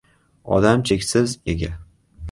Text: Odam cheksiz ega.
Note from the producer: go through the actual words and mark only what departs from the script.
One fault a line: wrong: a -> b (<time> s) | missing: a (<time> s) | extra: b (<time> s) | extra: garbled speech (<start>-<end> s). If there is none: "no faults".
no faults